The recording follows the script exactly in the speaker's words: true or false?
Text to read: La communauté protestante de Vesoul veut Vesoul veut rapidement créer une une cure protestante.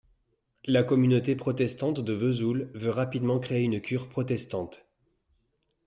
false